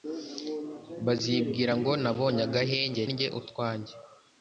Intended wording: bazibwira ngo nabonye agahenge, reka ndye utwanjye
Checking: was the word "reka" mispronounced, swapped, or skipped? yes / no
yes